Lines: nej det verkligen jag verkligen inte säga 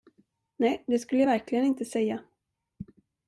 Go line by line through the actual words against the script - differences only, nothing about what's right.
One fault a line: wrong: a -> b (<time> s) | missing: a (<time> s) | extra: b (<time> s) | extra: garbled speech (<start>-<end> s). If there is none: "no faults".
wrong: verkligen -> skulle (1.0 s)